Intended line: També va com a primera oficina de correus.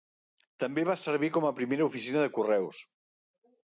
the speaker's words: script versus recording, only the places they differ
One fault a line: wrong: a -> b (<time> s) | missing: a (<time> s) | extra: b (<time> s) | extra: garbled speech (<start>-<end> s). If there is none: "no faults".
extra: servir (1.0 s)